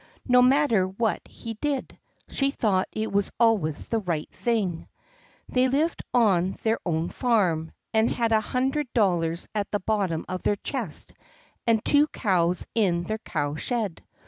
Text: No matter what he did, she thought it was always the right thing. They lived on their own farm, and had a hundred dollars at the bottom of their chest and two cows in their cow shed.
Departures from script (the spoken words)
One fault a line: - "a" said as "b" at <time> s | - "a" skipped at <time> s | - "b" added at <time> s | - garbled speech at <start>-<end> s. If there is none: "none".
none